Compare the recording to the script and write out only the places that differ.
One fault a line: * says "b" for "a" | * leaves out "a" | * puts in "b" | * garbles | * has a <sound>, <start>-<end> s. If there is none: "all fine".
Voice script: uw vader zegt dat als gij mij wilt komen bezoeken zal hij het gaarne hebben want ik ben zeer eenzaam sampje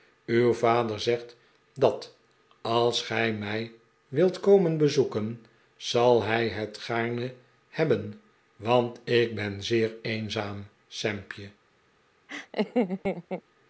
* has a laugh, 12.3-13.4 s